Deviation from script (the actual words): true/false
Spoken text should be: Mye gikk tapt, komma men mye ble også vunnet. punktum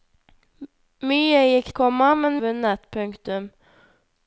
true